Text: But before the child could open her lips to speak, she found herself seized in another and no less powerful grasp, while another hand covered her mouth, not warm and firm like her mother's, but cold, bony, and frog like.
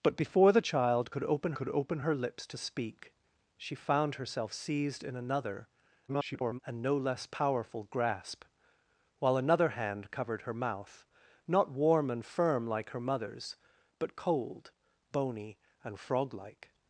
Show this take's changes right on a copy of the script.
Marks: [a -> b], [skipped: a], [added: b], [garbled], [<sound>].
But before the child could open [added: could open] her lips to speak, she found herself seized in another [garbled] and no less powerful grasp, while another hand covered her mouth, not warm and firm like her mother's, but cold, bony, and frog like.